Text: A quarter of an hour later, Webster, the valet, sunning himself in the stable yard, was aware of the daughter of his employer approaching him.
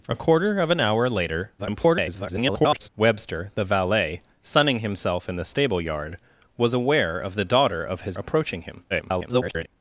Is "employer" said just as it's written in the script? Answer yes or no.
no